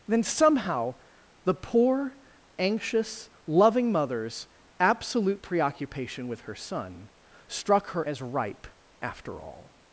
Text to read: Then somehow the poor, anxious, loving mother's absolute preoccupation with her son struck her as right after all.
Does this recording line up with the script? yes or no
no